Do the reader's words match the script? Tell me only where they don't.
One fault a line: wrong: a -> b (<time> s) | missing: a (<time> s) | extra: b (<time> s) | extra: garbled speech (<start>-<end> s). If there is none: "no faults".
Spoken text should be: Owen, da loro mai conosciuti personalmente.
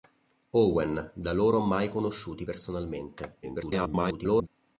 extra: garbled speech (3.4-4.5 s)